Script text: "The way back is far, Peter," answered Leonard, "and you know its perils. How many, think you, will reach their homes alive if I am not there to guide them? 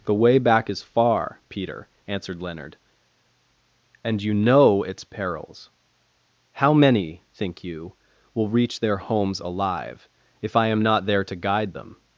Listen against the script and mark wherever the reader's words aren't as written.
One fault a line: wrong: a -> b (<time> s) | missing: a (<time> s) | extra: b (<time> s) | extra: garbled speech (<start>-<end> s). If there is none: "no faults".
no faults